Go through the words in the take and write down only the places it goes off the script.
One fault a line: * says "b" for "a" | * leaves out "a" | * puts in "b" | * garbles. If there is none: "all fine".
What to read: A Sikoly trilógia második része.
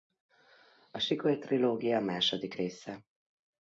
all fine